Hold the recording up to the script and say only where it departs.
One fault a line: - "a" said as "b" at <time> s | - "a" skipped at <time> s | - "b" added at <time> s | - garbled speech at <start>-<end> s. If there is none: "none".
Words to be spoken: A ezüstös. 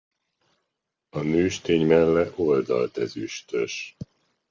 - "nőstény melle oldalt" added at 1.2 s